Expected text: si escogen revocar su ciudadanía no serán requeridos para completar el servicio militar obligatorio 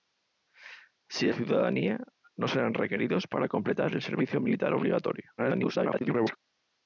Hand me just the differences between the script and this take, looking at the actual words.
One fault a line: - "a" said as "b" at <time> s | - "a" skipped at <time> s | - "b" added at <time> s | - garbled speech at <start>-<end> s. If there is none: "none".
- "escogen revocar su" skipped at 1.3 s
- garbled speech at 5.4-6.4 s